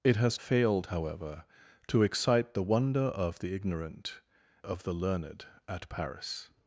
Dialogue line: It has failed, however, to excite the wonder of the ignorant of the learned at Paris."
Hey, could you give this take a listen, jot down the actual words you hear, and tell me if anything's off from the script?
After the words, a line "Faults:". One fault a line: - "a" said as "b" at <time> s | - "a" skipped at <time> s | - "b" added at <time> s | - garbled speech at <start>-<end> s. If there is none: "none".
It has failed, however, to excite the wonder of the ignorant of the learned at Paris."
Faults:
none